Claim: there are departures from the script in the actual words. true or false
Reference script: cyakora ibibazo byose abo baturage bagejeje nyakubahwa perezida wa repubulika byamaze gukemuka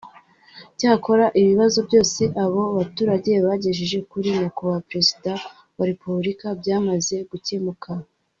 true